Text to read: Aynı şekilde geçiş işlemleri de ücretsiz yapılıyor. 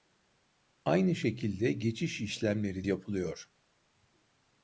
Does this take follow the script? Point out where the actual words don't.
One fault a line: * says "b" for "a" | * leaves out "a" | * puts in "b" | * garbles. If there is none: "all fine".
* leaves out "de ücretsiz"